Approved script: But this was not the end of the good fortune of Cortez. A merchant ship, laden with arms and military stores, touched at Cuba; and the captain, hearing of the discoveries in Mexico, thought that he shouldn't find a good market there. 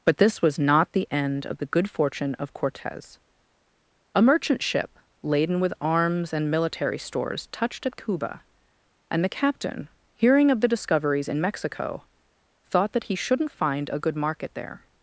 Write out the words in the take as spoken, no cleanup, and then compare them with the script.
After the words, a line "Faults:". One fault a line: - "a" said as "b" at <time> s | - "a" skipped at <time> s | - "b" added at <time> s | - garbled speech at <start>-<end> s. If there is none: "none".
But this was not the end of the good fortune of Cortez. A merchant ship, laden with arms and military stores, touched at Cuba; and the captain, hearing of the discoveries in Mexico, thought that he shouldn't find a good market there.
Faults:
none